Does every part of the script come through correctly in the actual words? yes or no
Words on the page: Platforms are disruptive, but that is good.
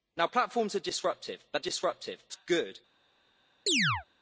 no